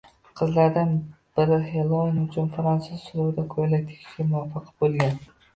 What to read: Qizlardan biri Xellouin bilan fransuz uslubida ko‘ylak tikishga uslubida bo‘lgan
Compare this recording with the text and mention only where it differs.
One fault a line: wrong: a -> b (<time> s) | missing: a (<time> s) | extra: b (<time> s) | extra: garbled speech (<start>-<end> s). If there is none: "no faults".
wrong: bilan -> uchun (2.2 s)
wrong: uslubida -> muvaffaq (4.3 s)